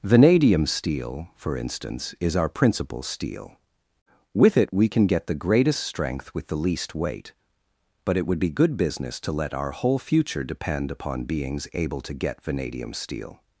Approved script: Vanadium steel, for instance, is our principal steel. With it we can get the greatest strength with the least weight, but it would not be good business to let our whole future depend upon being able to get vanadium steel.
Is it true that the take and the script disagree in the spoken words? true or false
true